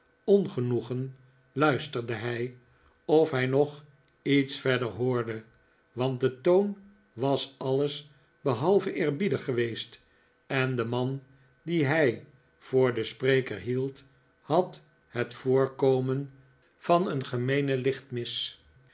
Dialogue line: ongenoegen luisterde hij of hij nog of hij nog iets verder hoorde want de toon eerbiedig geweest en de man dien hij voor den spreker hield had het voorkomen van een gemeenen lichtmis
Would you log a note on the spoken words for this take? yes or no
yes